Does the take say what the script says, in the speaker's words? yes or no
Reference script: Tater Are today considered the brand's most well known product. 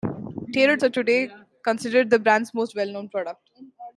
yes